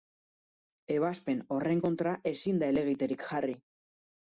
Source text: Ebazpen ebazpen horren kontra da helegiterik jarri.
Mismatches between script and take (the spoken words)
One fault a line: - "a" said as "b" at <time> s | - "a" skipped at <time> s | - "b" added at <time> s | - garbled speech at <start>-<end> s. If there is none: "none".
- "ebazpen" skipped at 1.4 s
- "ezin" added at 2.4 s